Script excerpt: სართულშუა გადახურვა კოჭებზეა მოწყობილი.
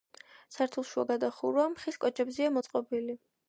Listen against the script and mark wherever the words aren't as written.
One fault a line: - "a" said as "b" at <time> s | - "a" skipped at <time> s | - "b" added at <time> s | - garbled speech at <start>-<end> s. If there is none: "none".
- "ხის" added at 1.8 s